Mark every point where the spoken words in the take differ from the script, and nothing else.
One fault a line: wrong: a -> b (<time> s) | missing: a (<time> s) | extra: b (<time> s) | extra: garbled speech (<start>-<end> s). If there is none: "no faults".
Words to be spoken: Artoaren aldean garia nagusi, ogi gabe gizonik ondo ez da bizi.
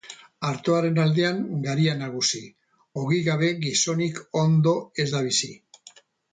no faults